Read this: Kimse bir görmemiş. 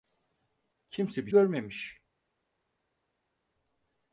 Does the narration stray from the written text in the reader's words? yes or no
no